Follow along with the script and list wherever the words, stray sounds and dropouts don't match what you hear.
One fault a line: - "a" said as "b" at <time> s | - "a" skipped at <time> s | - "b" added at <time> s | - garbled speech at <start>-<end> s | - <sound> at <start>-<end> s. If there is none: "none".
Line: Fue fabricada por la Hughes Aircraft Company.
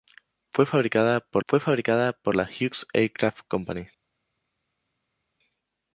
- "fue fabricada por" added at 1.5 s